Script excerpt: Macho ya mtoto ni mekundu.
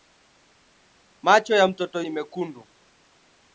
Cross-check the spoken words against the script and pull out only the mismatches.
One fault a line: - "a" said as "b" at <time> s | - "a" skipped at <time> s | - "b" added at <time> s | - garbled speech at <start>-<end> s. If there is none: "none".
none